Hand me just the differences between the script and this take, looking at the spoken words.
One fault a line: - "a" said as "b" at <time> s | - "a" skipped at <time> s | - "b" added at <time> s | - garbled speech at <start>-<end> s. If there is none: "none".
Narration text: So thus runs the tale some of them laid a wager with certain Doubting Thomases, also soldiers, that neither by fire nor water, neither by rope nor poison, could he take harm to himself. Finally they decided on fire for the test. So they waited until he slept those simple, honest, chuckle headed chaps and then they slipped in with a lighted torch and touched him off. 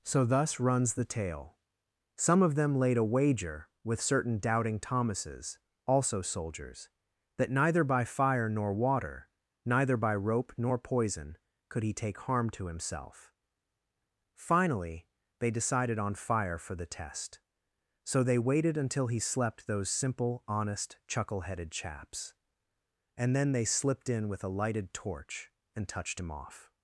none